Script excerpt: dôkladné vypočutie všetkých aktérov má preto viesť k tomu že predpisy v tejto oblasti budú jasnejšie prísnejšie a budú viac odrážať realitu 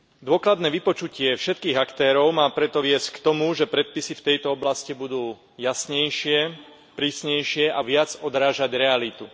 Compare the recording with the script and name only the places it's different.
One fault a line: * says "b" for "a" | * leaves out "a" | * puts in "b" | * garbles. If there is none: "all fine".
* leaves out "budú"